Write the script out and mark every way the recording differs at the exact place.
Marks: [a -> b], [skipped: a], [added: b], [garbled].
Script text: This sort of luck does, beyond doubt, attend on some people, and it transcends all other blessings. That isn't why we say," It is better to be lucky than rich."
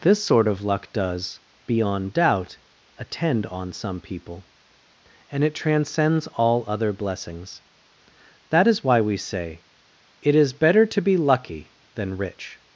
This sort of luck does, beyond doubt, attend on some people, and it transcends all other blessings. That [isn't -> is] why we say," It is better to be lucky than rich."